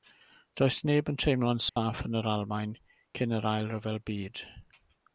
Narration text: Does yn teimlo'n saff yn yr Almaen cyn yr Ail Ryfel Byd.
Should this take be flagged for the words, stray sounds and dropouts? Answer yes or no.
yes